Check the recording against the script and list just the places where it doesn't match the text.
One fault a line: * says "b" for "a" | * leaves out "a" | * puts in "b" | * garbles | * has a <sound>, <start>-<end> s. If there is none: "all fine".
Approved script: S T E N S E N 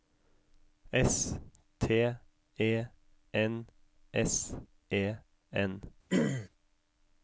* has a throat clearing, 6.1-6.5 s